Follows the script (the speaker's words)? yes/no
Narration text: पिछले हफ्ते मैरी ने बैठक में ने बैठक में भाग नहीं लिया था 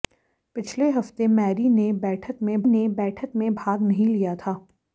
yes